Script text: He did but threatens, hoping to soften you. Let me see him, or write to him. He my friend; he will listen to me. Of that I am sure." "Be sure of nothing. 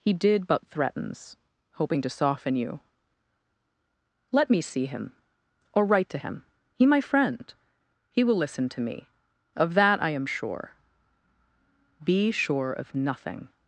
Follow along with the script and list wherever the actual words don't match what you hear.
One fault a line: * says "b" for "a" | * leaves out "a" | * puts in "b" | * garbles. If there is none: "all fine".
all fine